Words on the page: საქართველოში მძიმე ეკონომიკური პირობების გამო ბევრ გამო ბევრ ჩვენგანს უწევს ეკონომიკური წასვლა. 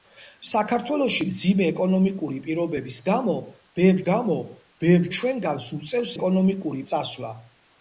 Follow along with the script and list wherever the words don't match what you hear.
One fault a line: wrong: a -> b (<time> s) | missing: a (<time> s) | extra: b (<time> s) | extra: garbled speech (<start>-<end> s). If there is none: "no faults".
no faults